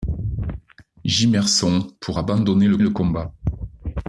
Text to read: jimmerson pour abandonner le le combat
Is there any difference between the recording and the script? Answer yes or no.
no